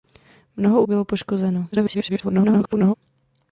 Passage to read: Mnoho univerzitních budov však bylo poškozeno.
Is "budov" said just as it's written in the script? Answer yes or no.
no